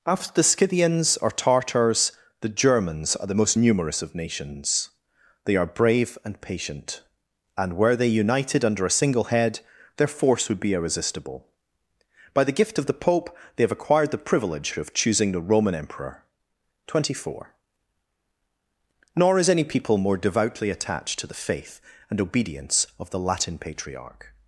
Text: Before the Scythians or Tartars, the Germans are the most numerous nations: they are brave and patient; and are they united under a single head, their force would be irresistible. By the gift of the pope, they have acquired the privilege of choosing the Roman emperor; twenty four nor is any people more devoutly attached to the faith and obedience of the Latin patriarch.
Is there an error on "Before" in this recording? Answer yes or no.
yes